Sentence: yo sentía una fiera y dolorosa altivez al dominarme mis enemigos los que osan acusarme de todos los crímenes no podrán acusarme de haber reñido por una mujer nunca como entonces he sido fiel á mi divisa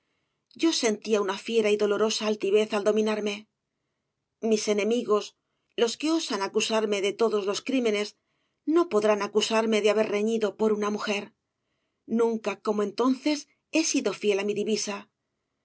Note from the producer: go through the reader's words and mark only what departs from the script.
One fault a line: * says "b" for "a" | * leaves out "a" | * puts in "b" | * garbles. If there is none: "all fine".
all fine